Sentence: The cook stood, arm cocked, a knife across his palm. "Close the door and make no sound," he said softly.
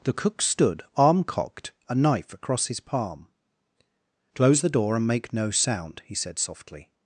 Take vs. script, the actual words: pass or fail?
pass